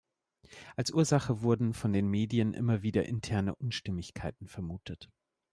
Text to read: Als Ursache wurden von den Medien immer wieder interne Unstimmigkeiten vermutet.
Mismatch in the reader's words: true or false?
false